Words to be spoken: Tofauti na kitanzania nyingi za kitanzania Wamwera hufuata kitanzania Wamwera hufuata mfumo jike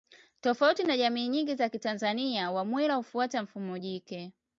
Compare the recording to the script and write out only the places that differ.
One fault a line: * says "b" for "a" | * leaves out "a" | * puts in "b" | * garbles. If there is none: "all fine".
* says "jamii" for "kitanzania"
* leaves out "kitanzania Wamwera hufuata"